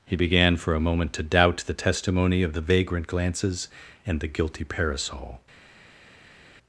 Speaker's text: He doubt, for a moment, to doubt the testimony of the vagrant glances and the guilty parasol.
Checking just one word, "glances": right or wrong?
right